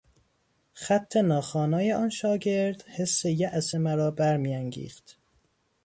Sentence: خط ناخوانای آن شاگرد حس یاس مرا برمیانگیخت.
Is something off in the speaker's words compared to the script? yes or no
no